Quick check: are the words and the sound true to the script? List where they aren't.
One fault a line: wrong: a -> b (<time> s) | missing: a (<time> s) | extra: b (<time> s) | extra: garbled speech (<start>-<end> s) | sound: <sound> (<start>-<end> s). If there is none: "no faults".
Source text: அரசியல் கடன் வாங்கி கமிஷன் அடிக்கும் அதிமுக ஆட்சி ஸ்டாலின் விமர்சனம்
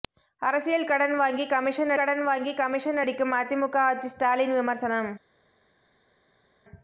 extra: கடன் வாங்கி கமிஷன் (1.9 s)